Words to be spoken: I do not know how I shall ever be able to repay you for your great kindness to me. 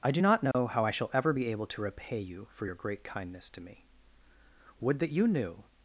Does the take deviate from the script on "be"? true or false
false